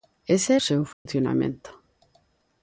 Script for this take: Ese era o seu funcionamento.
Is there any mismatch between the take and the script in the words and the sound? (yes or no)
yes